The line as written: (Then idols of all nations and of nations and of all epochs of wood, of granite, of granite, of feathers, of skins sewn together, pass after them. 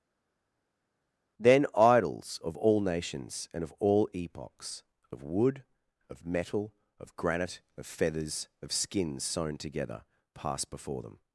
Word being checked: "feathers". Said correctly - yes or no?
yes